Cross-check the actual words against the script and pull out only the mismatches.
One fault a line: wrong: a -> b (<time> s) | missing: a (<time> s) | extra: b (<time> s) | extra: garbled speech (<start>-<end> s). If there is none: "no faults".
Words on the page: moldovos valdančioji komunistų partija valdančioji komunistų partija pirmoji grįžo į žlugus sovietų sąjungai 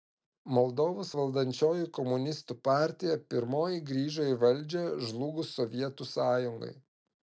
missing: valdančioji komunistų partija (3.2 s)
extra: valdžią (4.4 s)